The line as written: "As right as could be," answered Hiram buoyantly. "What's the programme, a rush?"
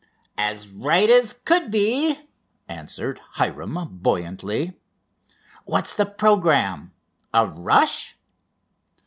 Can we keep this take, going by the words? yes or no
yes